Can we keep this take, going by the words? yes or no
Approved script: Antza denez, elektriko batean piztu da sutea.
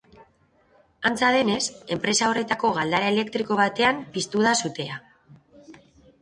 no